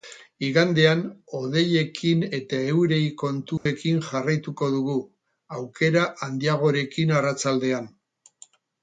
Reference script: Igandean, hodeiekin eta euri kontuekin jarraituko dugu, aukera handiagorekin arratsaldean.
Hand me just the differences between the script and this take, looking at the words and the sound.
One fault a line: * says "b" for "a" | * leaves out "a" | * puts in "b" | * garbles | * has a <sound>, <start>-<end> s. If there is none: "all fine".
* has a dropout, 3.6-3.7 s